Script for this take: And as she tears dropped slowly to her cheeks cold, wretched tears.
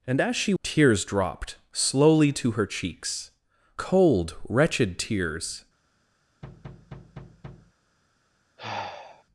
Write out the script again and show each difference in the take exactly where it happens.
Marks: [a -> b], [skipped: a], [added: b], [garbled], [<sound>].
And as she tears dropped slowly to her cheeks cold, wretched tears. [thud] [sigh]